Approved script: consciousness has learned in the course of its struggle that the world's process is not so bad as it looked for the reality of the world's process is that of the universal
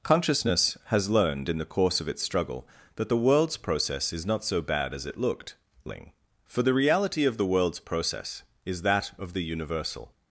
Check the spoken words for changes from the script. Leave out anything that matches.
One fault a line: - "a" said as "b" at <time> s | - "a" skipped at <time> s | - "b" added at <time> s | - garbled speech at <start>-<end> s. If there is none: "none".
- "ling" added at 5.8 s